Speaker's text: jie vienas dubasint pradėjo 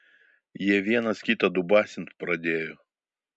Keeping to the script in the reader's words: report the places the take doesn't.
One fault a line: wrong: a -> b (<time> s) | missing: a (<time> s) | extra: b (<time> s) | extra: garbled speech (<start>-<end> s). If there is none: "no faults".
extra: kitą (1.3 s)